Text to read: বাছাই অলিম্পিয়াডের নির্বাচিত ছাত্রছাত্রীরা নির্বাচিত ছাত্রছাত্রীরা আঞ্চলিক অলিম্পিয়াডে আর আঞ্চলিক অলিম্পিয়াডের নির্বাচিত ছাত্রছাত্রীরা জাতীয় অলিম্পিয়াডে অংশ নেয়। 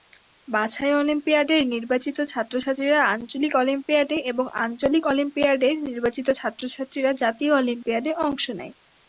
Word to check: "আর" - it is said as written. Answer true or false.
false